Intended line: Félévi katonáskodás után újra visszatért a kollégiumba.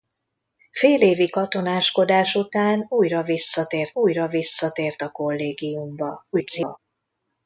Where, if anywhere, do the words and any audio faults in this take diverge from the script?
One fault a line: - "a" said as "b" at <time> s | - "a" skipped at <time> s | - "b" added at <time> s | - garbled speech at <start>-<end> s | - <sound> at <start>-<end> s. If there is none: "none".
- "újra visszatért" added at 3.9 s
- garbled speech at 6.3-6.8 s